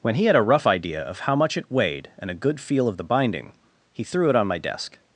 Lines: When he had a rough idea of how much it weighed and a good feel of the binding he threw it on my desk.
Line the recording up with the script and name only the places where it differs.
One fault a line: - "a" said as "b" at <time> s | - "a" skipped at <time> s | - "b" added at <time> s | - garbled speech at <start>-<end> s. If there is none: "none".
none